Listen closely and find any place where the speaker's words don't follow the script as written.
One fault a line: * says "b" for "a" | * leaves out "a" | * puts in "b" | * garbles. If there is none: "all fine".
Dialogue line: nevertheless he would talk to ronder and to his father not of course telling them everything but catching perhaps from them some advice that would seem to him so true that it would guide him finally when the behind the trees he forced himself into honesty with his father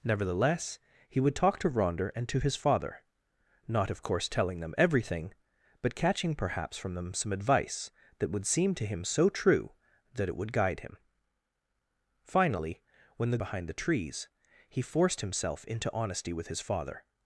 all fine